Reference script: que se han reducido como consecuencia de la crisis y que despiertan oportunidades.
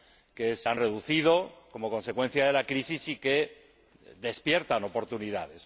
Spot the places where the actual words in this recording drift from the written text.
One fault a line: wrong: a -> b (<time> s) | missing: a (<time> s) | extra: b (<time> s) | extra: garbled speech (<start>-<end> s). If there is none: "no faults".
no faults